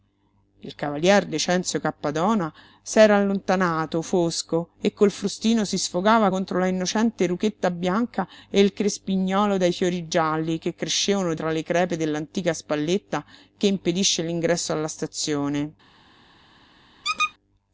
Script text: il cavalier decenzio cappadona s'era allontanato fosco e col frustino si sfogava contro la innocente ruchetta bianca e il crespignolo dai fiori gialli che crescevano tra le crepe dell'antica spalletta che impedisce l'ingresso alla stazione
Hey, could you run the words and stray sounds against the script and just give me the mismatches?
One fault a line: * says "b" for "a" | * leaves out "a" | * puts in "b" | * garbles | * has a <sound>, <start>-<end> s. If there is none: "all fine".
* has a squeak, 17.0-17.3 s